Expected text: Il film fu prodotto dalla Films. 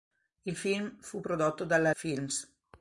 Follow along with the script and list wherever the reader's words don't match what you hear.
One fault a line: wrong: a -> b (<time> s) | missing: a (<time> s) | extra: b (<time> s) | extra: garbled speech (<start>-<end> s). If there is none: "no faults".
no faults